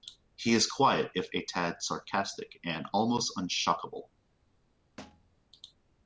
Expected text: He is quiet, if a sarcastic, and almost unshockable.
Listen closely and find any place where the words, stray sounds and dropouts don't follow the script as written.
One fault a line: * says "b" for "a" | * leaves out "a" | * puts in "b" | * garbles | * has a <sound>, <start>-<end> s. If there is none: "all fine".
* puts in "tad"
* has a thud, 5.0-5.4 s